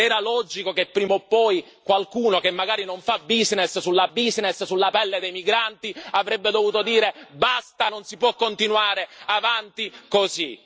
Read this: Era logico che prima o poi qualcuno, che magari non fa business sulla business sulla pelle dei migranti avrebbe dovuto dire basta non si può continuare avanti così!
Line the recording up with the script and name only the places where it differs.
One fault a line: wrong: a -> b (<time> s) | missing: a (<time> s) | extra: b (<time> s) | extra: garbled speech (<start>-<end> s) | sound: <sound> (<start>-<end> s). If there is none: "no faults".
no faults